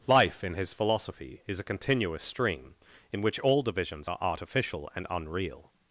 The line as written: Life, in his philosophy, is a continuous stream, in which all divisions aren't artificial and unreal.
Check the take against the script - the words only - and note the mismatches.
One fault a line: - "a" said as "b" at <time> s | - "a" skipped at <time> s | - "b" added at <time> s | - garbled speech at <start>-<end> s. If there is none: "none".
- "aren't" said as "are" at 4.1 s